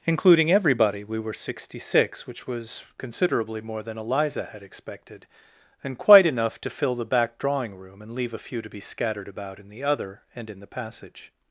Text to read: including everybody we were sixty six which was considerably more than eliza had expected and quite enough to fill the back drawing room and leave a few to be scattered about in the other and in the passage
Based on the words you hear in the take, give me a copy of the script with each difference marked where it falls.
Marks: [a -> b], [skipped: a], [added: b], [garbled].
including everybody we were sixty six which was considerably more than eliza had expected and quite enough to fill the back drawing room and leave a few to be scattered about in the other and in the passage